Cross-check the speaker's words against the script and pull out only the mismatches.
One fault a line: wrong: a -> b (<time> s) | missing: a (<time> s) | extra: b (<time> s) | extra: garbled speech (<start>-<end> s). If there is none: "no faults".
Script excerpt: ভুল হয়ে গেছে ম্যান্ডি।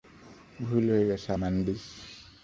no faults